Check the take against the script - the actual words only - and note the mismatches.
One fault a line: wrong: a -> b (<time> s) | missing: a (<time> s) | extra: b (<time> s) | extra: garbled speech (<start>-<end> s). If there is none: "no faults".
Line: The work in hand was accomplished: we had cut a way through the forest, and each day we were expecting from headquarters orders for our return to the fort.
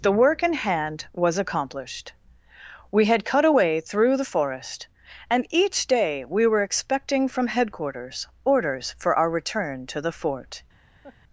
no faults